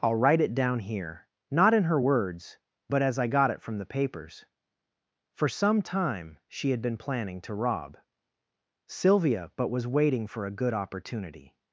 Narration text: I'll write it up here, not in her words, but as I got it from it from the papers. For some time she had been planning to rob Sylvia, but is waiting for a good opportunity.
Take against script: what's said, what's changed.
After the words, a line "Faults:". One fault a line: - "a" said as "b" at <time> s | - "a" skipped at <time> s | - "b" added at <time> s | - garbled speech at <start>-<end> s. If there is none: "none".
I'll write it down here, not in her words, but as I got it from the papers. For some time she had been planning to rob Sylvia, but was waiting for a good opportunity.
Faults:
- "up" said as "down" at 0.6 s
- "it from" skipped at 3.8 s
- "is" said as "was" at 9.7 s